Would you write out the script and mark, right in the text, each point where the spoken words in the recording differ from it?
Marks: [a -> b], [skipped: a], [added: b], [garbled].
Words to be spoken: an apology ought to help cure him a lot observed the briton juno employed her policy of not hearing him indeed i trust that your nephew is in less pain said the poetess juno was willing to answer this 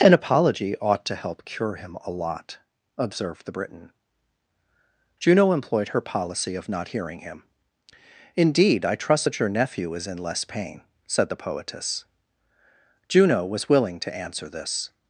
an apology ought to help cure him a lot observed the briton juno employed her policy of not hearing him indeed i trust that your nephew is in less pain said the poetess juno was willing to answer this